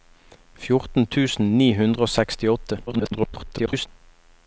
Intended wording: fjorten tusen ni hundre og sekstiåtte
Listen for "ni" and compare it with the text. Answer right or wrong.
right